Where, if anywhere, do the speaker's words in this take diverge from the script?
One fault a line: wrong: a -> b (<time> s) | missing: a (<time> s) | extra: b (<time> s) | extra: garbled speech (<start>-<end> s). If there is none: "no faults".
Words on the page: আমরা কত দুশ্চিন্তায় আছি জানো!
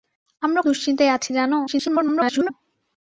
missing: কত (0.6 s)
extra: garbled speech (1.7-2.5 s)